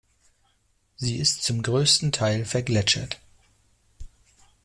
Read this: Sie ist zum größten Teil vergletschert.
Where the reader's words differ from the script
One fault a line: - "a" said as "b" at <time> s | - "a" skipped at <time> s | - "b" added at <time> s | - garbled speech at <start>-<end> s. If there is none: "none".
none